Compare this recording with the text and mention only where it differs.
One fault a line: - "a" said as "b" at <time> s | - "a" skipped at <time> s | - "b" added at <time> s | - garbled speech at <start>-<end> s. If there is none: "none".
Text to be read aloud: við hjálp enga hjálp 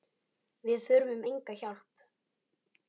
- "hjálp" said as "þurfum" at 0.8 s